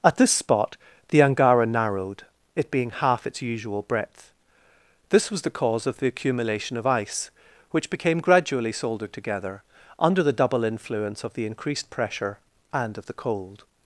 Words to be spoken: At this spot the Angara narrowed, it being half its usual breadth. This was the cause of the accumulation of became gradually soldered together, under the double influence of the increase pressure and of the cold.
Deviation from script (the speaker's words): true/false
true